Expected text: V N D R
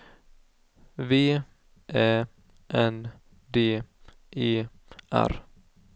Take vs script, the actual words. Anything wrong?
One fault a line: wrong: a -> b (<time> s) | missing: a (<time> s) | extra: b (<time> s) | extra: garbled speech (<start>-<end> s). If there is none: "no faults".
extra: Ä (1.9 s)
extra: E (4.4 s)